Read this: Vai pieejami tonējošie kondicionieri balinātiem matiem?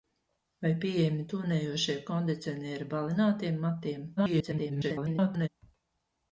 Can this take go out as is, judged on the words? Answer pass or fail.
fail